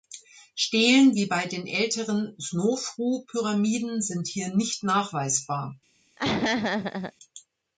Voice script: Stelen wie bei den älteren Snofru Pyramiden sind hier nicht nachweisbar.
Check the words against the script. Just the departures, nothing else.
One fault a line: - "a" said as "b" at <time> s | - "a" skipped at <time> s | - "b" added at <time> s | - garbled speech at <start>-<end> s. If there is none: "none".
none